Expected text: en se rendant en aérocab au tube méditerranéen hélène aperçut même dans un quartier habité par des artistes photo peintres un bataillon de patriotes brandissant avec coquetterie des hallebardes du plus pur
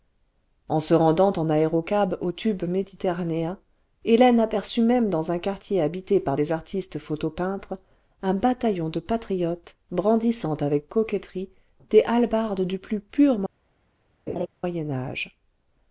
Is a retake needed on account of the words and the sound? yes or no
yes